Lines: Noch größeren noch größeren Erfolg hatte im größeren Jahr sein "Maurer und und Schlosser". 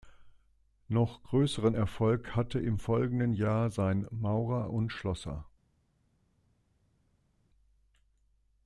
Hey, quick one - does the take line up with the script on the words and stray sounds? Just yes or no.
no